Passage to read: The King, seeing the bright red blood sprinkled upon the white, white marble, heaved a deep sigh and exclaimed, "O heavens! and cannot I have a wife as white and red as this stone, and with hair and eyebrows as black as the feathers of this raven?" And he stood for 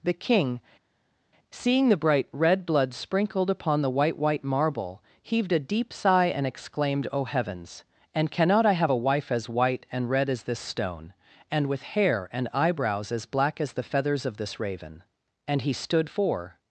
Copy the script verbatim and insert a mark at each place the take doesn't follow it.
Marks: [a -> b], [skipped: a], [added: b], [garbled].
The King, seeing the bright red blood sprinkled upon the white, white marble, heaved a deep sigh and exclaimed, "O heavens! and cannot I have a wife as white and red as this stone, and with hair and eyebrows as black as the feathers of this raven?" And he stood for